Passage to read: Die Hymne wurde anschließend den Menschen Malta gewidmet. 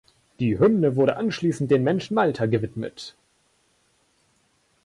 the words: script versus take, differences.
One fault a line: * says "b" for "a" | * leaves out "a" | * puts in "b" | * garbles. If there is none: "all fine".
all fine